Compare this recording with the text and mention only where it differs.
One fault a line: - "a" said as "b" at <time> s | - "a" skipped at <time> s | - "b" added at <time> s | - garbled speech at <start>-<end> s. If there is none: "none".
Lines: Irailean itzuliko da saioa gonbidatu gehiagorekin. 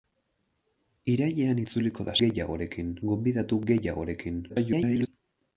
- "saioa" said as "gehiagorekin" at 2.2 s
- garbled speech at 4.5-5.1 s